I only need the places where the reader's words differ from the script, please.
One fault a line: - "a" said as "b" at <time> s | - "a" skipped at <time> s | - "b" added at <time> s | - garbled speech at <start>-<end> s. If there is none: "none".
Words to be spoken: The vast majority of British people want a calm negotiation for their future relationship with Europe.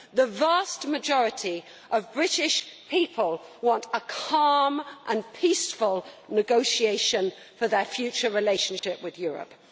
- "and peaceful" added at 5.1 s